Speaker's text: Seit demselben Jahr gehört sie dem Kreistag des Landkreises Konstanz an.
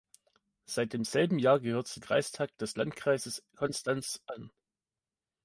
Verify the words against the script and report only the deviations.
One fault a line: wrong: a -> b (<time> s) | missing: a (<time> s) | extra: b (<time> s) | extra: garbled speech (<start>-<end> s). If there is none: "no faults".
missing: dem (2.0 s)